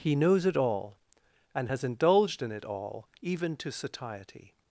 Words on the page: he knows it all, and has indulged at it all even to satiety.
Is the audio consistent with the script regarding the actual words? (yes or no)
no